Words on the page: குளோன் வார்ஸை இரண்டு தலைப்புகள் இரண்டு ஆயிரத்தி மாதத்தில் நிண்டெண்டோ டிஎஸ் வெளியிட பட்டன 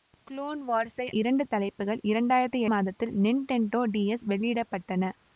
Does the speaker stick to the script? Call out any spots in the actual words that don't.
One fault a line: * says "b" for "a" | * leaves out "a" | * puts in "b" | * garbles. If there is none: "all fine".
all fine